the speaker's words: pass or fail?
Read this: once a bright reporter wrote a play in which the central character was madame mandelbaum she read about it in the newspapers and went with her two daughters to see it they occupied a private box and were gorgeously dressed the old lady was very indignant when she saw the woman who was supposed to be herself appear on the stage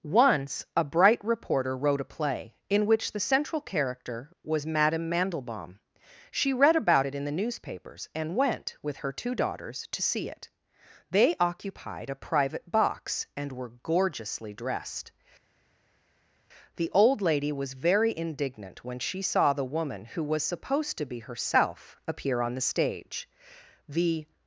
fail